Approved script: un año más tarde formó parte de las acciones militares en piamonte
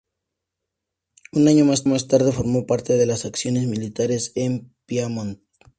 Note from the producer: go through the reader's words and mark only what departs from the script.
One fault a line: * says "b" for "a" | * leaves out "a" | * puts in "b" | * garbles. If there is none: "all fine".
* puts in "más"